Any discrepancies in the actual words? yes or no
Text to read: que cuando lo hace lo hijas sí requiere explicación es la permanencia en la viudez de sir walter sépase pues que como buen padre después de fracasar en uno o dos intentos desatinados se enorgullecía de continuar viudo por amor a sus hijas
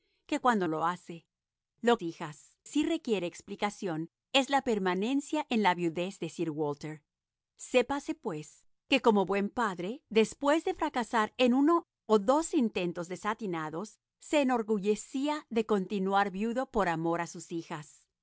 no